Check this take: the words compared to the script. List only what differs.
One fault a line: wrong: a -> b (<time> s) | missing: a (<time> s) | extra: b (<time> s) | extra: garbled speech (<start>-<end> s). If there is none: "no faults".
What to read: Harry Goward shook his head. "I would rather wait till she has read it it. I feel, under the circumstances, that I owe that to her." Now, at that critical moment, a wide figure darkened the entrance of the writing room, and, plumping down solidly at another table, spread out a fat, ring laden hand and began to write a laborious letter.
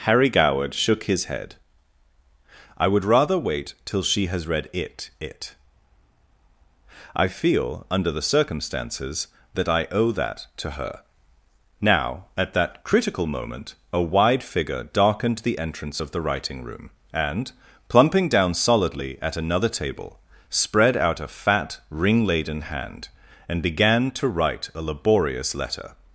no faults